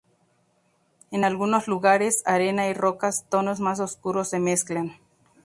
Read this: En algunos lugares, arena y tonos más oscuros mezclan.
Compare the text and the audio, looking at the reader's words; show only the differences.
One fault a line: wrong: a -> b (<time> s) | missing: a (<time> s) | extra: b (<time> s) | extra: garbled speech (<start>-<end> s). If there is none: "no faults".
extra: rocas (2.7 s)
extra: se (4.3 s)